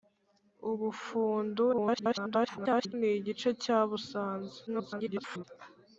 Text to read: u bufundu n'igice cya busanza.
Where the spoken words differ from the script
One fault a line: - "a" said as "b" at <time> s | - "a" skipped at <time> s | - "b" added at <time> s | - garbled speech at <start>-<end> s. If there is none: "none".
- garbled speech at 1.7-2.9 s
- garbled speech at 4.7-5.4 s